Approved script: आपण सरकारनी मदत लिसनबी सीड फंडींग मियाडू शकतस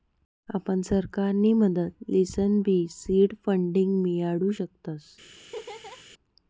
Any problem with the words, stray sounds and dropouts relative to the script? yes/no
yes